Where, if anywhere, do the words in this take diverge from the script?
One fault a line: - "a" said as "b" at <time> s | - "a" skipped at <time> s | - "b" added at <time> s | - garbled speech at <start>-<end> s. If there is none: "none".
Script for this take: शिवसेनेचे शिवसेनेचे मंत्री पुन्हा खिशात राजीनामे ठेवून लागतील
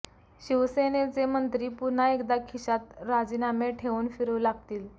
- "शिवसेनेचे" skipped at 1.2 s
- "एकदा" added at 2.1 s
- "फिरू" added at 4.1 s